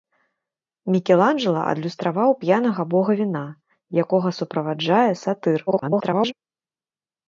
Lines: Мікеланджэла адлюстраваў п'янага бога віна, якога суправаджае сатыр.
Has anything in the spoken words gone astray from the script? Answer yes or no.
yes